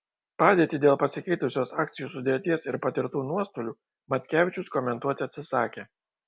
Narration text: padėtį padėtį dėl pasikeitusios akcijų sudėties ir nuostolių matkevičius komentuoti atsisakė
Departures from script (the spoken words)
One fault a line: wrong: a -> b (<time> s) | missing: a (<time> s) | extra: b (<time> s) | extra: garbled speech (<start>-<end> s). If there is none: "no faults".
missing: padėtį (0.8 s)
extra: patirtų (2.8 s)